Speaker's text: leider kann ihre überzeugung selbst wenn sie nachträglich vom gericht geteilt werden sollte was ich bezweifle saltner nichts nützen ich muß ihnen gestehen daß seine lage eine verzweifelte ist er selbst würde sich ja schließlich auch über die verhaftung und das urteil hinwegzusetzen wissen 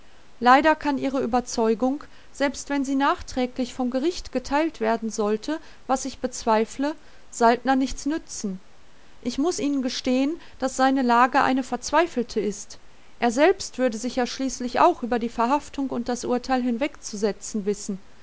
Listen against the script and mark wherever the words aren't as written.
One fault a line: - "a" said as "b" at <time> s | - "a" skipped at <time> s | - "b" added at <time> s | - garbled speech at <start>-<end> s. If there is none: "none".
none